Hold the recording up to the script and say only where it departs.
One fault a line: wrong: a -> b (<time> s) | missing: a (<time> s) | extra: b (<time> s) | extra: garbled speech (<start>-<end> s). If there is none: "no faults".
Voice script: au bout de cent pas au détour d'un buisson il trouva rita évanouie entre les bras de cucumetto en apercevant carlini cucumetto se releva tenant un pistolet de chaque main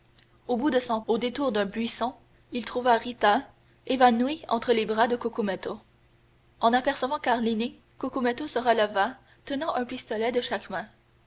missing: pas (1.0 s)